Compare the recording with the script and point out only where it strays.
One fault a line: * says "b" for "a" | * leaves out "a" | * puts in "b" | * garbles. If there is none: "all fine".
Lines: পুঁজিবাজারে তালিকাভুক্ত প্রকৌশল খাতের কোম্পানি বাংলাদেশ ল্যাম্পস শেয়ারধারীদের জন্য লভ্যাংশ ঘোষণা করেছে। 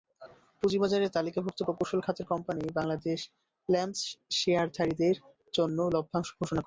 all fine